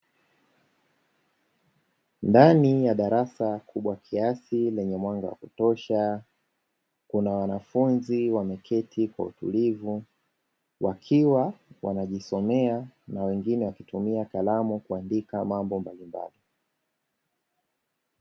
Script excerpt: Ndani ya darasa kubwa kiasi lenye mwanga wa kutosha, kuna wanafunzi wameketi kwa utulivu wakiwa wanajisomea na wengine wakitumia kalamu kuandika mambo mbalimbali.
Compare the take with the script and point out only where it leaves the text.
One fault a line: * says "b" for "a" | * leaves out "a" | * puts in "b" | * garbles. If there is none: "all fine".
all fine